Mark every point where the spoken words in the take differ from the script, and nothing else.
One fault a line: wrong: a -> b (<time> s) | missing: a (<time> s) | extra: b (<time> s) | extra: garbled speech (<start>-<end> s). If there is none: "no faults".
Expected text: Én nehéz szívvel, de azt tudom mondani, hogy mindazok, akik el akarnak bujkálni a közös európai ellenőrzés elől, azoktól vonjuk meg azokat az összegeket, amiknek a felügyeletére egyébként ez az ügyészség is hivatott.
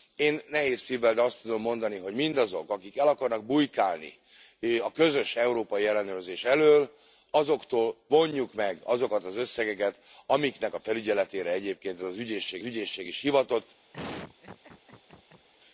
extra: ügyészség (12.6 s)